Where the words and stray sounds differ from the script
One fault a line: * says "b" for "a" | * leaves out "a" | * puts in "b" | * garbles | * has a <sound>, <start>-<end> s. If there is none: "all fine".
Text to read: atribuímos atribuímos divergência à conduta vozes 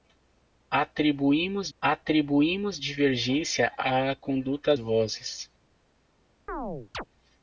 * has a chirp, 6.5-7.0 s